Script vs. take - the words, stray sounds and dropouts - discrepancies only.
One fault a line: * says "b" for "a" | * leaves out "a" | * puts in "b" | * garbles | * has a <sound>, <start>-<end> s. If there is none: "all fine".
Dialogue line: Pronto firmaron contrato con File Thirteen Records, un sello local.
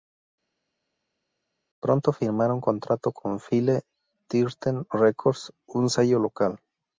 all fine